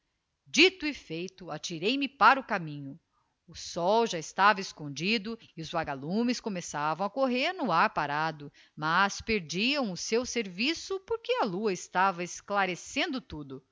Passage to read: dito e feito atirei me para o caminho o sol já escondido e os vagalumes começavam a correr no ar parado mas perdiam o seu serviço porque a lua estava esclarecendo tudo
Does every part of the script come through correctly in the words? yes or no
no